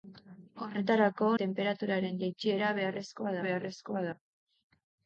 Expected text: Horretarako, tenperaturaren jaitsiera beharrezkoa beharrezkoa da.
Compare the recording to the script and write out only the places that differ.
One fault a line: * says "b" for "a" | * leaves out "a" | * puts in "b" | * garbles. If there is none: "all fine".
all fine